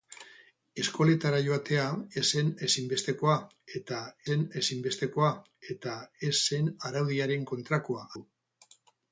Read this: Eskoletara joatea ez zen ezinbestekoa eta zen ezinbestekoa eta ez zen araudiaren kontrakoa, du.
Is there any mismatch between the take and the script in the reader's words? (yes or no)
no